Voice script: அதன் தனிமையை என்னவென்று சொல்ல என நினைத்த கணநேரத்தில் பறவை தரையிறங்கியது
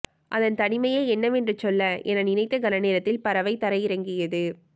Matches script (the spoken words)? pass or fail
pass